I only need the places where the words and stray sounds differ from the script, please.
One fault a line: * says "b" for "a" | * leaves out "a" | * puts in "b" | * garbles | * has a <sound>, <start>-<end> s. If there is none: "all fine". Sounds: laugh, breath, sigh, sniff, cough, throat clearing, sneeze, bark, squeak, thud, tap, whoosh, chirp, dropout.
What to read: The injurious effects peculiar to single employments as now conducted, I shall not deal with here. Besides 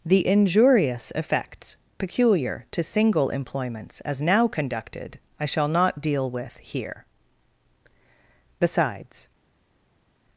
all fine